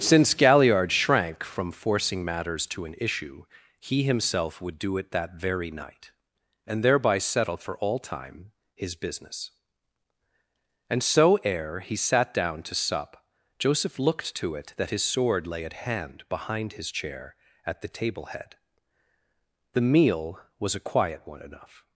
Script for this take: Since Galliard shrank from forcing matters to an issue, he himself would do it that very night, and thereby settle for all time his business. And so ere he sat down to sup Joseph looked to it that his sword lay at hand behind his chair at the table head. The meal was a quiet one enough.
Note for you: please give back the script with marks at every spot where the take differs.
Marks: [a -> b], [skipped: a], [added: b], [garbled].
Since Galliard shrank from forcing matters to an issue, he himself would do it that very night, and thereby settle for all time his business. And so ere he sat down to sup Joseph looked to it that his sword lay at hand behind his chair at the table head. The meal was a quiet one enough.